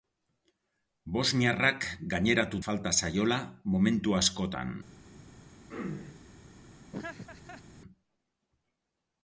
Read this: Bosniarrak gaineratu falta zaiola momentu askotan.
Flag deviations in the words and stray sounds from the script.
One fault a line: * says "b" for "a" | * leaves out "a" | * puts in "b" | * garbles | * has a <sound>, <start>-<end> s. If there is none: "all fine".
* has a throat clearing, 5.7-6.3 s
* has a laugh, 6.9-7.6 s